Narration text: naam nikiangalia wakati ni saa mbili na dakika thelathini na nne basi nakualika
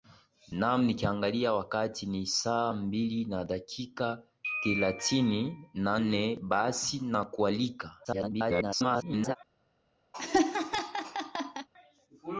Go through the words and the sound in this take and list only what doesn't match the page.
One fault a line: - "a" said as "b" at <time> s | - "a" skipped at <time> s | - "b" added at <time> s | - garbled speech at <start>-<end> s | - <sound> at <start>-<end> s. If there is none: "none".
- garbled speech at 8.0-9.4 s
- laugh at 10.1-11.7 s